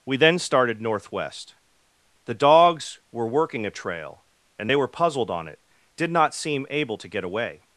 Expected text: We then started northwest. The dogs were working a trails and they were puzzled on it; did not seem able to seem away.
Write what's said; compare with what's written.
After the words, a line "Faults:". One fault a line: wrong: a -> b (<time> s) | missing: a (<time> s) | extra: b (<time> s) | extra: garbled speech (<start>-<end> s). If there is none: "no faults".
We then started northwest. The dogs were working a trail and they were puzzled on it; did not seem able to get away.
Faults:
wrong: trails -> trail (3.7 s)
wrong: seem -> get (7.1 s)